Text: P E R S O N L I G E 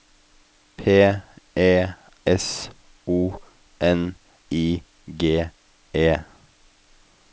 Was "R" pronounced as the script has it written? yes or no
no